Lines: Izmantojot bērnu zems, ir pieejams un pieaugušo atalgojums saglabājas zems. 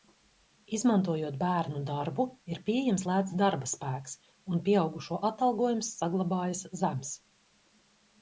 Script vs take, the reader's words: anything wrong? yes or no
yes